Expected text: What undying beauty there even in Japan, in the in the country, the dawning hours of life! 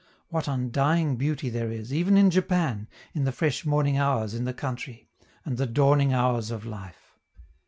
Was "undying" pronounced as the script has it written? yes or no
yes